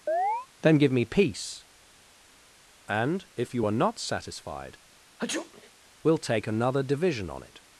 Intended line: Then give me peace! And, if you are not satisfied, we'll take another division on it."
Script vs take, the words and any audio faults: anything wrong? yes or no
yes